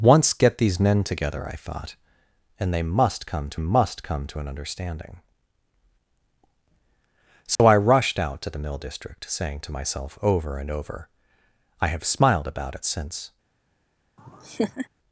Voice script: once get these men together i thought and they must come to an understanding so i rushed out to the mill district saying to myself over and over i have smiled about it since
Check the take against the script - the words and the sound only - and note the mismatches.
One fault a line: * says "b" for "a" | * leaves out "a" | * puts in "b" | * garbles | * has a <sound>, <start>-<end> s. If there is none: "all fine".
* puts in "must come to"
* has a dropout, 7.6-7.6 s
* has a laugh, 14.2-14.9 s